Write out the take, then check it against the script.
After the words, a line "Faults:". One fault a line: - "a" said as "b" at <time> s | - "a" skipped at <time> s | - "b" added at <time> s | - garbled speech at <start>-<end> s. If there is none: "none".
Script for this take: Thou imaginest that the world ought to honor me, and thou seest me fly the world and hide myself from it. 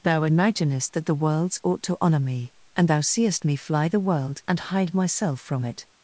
Thou imaginest that the worlds ought to honor me, and thou seest me fly the world and hide myself from it.
Faults:
- "world" said as "worlds" at 1.1 s